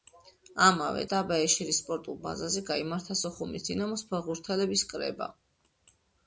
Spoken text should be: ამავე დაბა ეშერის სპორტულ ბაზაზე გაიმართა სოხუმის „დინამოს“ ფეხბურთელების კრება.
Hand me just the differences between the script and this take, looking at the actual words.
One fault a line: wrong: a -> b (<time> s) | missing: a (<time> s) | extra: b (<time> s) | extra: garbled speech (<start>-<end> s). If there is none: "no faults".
no faults